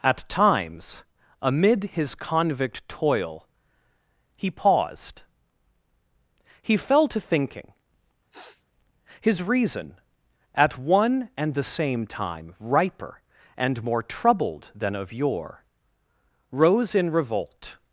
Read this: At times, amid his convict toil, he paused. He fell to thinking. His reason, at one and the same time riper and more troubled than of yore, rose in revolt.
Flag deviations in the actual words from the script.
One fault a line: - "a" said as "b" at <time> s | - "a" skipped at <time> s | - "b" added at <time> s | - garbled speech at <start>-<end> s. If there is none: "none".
none